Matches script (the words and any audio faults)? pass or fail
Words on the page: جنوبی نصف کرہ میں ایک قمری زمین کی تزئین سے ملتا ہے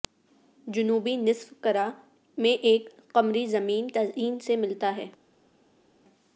fail